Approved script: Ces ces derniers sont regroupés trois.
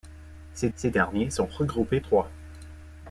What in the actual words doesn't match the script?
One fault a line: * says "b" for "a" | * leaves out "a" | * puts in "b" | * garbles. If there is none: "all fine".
all fine